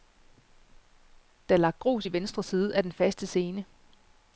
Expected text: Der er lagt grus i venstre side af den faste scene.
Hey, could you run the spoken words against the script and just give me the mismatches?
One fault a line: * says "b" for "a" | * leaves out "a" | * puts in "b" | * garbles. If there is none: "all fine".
all fine